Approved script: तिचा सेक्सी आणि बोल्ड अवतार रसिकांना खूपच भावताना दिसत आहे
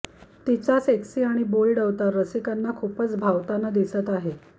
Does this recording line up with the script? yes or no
yes